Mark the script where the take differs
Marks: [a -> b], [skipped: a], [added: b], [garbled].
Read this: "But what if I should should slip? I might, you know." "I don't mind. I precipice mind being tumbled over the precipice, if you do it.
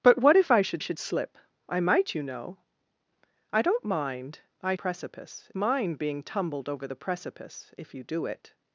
"But what if I should should slip? I might, you know." "I don't mind. I precipice mind being tumbled over the precipice, if you do it.